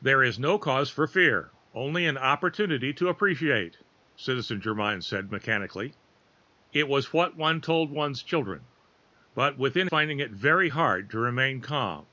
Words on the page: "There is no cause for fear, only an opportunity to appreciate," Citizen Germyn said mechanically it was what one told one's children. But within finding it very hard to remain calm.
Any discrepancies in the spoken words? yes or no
no